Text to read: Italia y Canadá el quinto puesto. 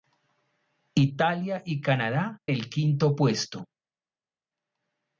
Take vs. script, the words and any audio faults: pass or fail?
pass